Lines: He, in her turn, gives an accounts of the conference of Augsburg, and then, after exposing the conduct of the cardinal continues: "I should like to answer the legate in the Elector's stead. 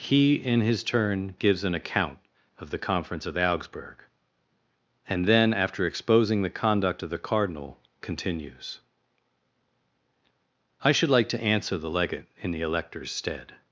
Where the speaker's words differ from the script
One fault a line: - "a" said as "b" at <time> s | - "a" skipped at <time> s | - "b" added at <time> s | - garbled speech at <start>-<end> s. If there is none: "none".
- "her" said as "his" at 0.6 s
- "accounts" said as "account" at 1.8 s